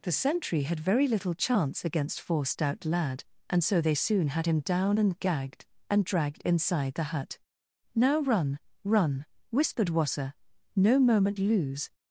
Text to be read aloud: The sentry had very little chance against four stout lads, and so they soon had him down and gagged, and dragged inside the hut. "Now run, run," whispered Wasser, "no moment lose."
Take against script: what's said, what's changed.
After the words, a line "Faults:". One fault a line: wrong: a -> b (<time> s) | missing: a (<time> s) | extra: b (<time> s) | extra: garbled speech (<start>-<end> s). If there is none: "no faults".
The sentry had very little chance against four stout lad, and so they soon had him down and gagged, and dragged inside the hut. "Now run, run," whispered Wasser, "no moment lose."
Faults:
wrong: lads -> lad (2.9 s)